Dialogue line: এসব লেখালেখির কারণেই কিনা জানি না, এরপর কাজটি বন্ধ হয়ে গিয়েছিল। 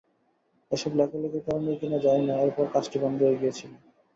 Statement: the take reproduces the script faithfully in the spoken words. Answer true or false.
true